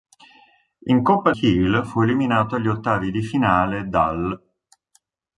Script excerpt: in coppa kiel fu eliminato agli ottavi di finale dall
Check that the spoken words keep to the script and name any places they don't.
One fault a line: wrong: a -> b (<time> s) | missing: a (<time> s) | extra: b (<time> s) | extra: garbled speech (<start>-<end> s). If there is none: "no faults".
no faults